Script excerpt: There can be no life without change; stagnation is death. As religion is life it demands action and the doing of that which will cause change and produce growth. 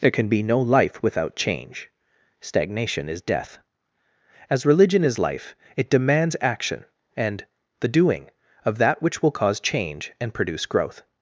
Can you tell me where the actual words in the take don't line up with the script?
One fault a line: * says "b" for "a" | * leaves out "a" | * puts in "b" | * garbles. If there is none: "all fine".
all fine